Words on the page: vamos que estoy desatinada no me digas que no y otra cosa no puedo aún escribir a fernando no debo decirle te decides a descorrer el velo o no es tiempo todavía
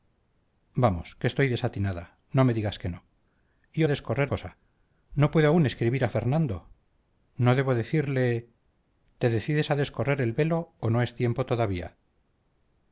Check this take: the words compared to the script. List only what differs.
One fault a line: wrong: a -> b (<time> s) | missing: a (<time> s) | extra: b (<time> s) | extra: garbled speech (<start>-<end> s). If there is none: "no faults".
wrong: otra -> descorrer (3.9 s)